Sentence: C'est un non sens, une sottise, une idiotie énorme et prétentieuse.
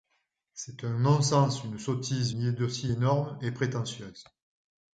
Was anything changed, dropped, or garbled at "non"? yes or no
no